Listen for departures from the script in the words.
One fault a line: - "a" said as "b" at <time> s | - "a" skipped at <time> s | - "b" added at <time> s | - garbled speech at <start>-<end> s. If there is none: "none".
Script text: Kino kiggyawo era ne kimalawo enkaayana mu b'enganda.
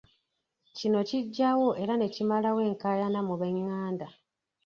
none